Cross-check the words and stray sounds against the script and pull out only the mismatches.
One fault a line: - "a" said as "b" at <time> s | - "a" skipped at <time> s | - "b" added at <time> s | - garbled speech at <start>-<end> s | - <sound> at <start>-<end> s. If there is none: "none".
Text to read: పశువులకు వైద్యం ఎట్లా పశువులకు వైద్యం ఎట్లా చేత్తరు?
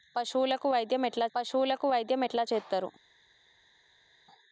none